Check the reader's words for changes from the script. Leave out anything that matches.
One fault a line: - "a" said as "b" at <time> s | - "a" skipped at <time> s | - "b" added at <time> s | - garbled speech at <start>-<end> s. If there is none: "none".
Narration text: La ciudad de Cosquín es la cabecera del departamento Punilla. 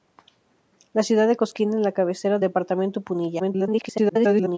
- "del" skipped at 2.4 s
- garbled speech at 3.4-4.6 s